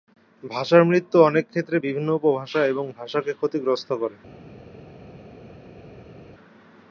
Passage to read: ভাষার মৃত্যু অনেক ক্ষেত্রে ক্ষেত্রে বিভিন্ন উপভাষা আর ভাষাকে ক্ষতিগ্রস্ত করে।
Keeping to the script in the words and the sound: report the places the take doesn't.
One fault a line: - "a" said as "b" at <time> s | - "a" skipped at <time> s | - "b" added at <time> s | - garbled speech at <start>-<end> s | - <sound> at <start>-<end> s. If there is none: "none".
- "ক্ষেত্রে" skipped at 1.8 s
- "আর" said as "এবং" at 2.6 s